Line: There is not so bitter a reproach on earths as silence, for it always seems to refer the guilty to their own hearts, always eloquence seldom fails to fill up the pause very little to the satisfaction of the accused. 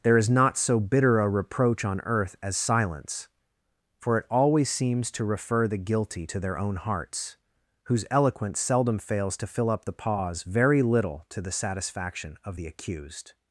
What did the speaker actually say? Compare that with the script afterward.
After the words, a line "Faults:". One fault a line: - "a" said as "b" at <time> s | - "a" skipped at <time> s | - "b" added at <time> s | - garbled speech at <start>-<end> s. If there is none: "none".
There is not so bitter a reproach on earth as silence, for it always seems to refer the guilty to their own hearts, whose eloquence seldom fails to fill up the pause very little to the satisfaction of the accused.
Faults:
- "earths" said as "earth" at 2.0 s
- "always" said as "whose" at 7.8 s